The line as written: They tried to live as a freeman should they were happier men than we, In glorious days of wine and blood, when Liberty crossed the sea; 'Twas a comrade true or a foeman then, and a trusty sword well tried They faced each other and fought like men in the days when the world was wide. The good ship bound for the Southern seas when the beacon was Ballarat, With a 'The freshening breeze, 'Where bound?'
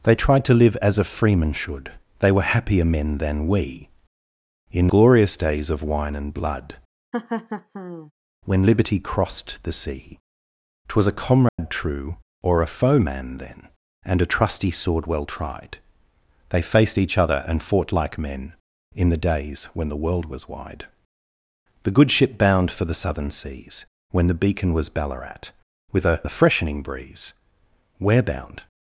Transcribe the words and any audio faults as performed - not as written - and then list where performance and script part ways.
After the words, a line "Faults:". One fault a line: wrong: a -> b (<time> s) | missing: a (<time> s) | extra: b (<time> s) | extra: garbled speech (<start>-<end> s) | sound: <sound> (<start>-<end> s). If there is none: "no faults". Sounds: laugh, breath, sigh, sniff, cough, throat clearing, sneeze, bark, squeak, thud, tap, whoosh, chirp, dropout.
They tried to live as a freeman should they were happier men than we, In glorious days of wine and blood, when Liberty crossed the sea; 'Twas a comrade true or a foeman then, and a trusty sword well tried They faced each other and fought like men in the days when the world was wide. The good ship bound for the Southern seas when the beacon was Ballarat, With a 'The freshening breeze, 'Where bound?'
Faults:
sound: laugh (7.1-8.1 s)
sound: dropout (11.5-11.6 s)